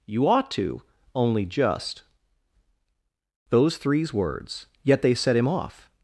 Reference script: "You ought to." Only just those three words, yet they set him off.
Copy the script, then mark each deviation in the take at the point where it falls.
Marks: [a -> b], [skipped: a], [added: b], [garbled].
"You ought to." Only just those [three -> threes] words, yet they set him off.